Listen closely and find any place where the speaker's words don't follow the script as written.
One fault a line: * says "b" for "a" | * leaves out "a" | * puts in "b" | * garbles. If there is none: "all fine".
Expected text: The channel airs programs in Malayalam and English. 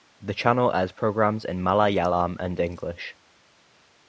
all fine